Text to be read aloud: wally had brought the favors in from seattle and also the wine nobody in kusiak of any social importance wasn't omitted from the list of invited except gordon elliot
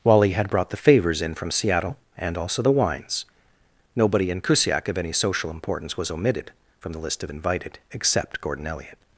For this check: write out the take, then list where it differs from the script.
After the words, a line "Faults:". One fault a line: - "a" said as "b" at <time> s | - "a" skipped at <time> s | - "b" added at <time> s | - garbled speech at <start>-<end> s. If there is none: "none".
wally had brought the favors in from seattle and also the wines nobody in kusiak of any social importance was omitted from the list of invited except gordon elliot
Faults:
- "wine" said as "wines" at 2.7 s
- "wasn't" said as "was" at 6.0 s